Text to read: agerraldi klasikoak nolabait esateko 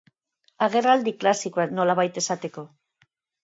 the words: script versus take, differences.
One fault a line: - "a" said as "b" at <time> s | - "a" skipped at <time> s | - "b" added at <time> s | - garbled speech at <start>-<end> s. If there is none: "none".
none